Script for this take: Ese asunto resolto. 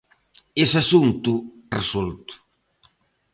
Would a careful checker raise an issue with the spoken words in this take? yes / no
no